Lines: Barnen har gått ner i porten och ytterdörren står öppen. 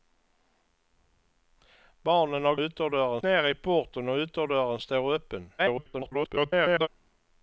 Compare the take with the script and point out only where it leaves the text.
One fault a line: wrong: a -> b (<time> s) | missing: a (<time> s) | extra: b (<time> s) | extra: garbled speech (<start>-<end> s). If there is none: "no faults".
wrong: gått -> ytterdörren (2.6 s)
extra: garbled speech (5.6-6.9 s)